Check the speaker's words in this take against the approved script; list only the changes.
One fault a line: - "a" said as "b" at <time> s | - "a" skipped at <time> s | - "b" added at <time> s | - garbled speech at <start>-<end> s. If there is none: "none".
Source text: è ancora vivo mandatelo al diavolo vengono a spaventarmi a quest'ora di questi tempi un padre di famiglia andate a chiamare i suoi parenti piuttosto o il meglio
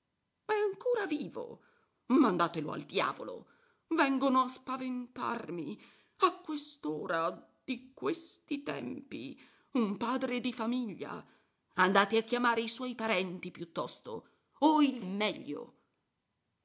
none